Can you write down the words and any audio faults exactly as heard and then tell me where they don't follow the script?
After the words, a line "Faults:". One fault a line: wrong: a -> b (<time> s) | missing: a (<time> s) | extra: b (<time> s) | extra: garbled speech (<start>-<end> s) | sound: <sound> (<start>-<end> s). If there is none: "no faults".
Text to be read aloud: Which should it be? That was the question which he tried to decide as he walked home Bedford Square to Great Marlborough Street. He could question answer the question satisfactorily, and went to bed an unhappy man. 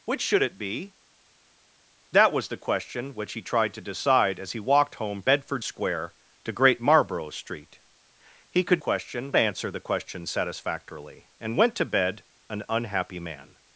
Which should it be? That was the question which he tried to decide as he walked home Bedford Square to Great Marlborough Street. He could question answer the question satisfactorily, and went to bed an unhappy man.
Faults:
no faults